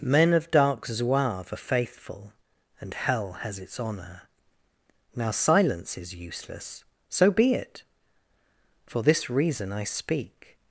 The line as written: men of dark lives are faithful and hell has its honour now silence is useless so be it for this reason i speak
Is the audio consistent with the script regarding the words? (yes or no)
no